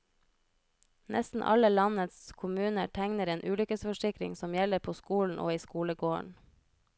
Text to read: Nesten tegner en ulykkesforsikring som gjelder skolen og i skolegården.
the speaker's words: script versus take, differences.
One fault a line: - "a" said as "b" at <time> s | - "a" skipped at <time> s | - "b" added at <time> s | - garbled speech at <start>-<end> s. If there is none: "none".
- "alle landets kommuner" added at 1.4 s
- "på" added at 4.8 s